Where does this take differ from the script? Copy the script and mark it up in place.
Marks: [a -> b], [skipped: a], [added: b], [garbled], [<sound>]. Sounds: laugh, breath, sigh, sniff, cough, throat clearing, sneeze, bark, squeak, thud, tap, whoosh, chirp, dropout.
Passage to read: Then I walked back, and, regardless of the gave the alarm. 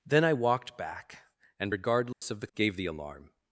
Then I walked back, and, regardless [dropout] of the gave the alarm.